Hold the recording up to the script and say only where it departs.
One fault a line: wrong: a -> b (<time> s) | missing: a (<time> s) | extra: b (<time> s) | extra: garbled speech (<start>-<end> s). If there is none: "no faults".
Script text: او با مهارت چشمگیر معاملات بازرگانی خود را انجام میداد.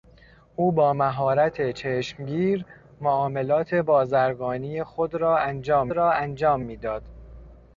extra: را انجام (5.9 s)